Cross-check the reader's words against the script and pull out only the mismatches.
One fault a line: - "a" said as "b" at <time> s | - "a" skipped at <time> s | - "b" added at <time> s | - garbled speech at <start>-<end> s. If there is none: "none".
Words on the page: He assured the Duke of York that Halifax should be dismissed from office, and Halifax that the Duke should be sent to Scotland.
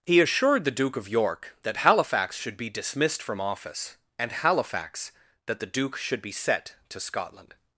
- "sent" said as "set" at 6.3 s